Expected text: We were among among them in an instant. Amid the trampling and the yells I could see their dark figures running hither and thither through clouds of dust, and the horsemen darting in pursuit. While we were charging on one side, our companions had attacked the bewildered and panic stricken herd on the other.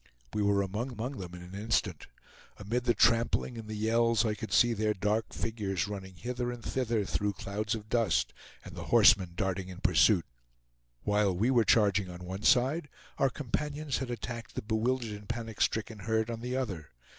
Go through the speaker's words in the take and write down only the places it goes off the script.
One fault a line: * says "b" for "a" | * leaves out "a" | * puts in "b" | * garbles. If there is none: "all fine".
all fine